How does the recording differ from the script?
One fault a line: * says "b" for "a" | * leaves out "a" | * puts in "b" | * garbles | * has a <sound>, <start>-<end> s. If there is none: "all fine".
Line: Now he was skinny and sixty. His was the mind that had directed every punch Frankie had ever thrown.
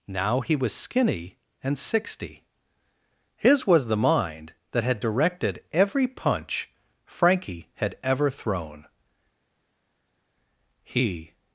* puts in "He"